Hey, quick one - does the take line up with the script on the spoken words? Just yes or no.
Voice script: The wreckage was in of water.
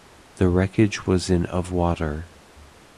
yes